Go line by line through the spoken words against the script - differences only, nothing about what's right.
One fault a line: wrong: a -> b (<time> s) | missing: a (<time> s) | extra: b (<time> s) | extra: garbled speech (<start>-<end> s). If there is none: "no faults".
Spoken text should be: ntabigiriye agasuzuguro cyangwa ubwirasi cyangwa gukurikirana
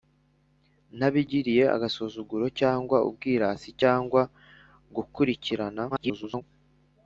extra: garbled speech (5.9-6.4 s)